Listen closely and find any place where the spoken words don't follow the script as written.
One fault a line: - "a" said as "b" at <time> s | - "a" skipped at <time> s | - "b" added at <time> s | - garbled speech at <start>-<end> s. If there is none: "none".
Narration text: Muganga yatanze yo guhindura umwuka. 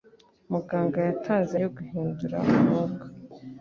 none